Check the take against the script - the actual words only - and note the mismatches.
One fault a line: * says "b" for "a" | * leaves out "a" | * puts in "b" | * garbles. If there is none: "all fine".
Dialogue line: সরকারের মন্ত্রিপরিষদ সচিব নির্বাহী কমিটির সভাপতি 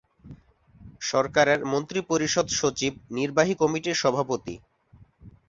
all fine